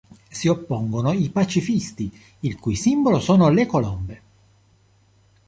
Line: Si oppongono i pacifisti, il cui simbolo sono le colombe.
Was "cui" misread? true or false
false